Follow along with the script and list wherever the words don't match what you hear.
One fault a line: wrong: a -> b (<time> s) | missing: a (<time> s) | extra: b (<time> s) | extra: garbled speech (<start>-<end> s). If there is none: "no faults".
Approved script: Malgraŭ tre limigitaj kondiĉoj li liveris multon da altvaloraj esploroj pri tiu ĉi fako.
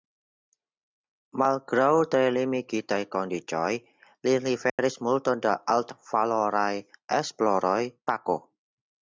missing: pri tiu ĉi (7.8 s)